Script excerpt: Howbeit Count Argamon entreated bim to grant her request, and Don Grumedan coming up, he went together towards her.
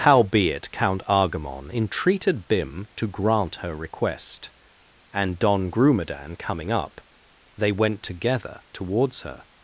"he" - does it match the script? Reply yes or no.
no